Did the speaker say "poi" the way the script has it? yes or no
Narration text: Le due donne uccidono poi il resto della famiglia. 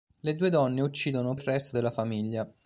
no